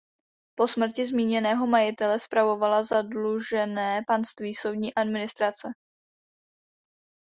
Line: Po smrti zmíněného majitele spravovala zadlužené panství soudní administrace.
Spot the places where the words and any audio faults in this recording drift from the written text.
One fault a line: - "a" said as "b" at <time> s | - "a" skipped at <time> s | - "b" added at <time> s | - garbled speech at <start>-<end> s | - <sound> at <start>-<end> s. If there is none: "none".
none